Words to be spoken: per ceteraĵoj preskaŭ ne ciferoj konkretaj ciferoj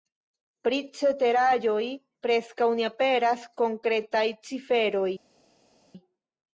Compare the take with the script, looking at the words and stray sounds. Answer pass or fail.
fail